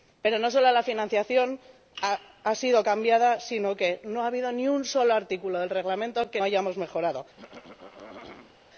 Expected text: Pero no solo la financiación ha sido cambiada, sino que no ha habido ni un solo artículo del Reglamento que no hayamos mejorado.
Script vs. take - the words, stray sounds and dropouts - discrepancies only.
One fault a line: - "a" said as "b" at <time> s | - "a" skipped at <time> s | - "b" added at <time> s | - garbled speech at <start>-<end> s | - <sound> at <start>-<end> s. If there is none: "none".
- "no" skipped at 6.4 s
- throat clearing at 7.4-8.7 s